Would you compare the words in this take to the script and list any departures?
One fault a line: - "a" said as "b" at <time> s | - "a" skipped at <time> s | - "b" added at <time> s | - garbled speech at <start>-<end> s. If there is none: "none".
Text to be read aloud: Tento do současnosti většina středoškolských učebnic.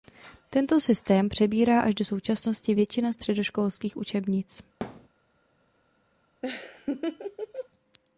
- "systém přebírá až" added at 0.8 s